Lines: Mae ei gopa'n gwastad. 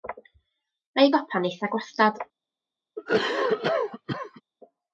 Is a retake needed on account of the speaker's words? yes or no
yes